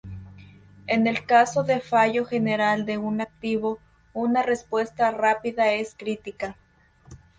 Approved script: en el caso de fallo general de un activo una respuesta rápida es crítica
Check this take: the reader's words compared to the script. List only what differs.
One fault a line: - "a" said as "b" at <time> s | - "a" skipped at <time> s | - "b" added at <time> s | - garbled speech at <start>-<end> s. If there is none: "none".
none